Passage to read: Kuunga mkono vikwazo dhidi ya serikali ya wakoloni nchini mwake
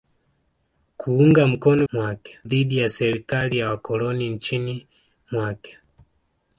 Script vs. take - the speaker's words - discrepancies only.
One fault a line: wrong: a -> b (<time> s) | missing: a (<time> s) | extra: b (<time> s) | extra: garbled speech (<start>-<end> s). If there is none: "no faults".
wrong: vikwazo -> mwake (1.9 s)